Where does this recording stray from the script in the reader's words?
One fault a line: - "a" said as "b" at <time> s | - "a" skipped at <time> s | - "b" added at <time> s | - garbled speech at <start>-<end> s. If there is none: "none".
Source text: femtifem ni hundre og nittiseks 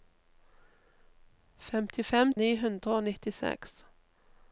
none